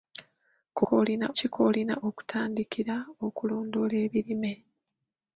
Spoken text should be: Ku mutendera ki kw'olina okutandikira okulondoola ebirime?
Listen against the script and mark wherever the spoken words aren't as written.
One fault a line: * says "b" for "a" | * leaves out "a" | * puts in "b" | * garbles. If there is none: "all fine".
* says "kw'olina" for "mutendera"